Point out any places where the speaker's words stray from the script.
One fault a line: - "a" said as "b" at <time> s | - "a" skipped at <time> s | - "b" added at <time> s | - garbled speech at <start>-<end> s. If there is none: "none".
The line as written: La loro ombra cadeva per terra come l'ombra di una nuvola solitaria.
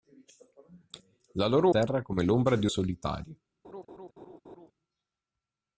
- "ombra cadeva per" skipped at 1.7 s
- "una nuvola" skipped at 2.7 s